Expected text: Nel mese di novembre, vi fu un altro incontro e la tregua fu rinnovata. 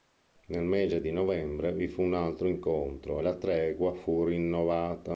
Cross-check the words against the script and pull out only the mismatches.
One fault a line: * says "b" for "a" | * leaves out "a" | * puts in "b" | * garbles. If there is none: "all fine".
all fine